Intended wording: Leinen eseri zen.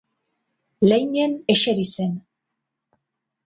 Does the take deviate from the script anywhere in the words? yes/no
no